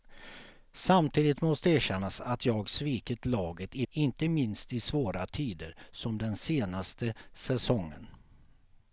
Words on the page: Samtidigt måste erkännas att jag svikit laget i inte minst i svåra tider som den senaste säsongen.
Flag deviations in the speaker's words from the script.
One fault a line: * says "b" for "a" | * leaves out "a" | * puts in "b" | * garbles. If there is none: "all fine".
all fine